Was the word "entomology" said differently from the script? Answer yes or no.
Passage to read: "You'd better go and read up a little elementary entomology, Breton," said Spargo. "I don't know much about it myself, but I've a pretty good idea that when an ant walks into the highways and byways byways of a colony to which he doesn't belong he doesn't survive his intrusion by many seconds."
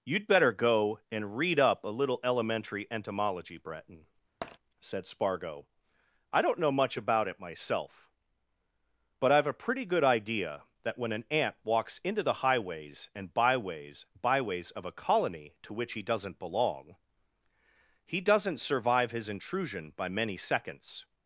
no